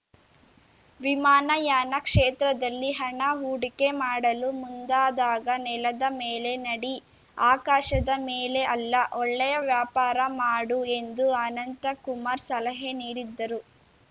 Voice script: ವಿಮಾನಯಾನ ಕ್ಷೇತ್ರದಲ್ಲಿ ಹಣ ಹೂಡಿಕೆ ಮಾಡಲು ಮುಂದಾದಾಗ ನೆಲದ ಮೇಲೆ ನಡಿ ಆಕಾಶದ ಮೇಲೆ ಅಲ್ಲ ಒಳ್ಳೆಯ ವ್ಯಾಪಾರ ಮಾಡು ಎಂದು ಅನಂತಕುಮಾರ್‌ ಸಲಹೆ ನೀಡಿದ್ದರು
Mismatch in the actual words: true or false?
false